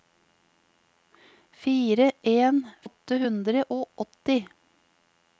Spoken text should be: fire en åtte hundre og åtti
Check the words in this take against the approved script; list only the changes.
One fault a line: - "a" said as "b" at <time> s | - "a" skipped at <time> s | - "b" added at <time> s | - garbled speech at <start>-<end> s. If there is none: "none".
none